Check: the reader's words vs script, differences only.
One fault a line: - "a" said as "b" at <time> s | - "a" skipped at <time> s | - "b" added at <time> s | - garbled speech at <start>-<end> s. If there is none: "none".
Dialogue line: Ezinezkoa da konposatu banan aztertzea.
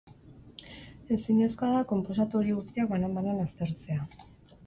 - "horiek guztiak banan" added at 2.4 s